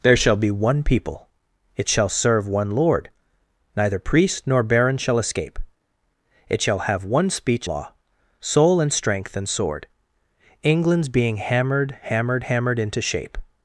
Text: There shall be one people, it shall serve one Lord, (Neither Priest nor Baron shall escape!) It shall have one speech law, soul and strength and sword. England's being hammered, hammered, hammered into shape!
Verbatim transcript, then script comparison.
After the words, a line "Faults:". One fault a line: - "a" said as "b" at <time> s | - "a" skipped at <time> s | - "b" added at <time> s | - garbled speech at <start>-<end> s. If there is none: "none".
There shall be one people, it shall serve one Lord, (Neither Priest nor Baron shall escape!) It shall have one speech law, soul and strength and sword. England's being hammered, hammered, hammered into shape!
Faults:
none